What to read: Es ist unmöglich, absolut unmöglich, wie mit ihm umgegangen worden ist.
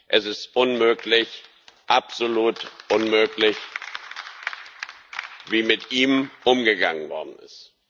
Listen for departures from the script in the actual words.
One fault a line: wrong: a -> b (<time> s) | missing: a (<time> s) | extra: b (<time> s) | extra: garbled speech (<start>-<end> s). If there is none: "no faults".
no faults